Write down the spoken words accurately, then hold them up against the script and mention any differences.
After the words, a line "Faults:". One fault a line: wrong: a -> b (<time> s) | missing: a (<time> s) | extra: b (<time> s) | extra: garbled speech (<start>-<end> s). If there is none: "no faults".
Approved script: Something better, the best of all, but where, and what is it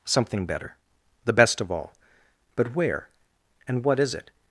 Something better, the best of all, but where, and what is it
Faults:
no faults